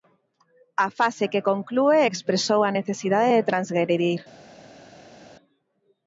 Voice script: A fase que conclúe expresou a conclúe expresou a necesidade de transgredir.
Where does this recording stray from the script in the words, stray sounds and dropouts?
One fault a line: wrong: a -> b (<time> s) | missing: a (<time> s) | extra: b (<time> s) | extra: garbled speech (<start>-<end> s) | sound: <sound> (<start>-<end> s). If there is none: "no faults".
missing: conclúe expresou a (2.7 s)